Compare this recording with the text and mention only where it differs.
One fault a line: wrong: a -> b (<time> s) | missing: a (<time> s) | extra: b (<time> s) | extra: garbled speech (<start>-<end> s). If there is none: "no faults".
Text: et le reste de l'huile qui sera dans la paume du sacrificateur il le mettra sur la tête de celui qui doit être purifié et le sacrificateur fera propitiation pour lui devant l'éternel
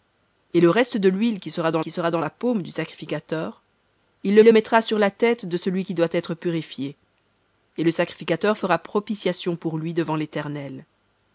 extra: qui sera dans (1.8 s)
extra: le (4.4 s)